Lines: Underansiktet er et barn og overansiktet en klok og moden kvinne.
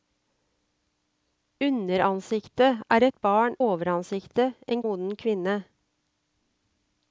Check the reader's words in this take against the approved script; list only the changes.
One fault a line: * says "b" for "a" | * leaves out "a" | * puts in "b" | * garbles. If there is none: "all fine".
* leaves out "og"
* leaves out "klok og"